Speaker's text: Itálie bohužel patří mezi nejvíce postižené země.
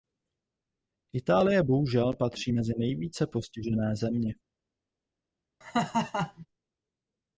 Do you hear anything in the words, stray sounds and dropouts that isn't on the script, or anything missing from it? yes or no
yes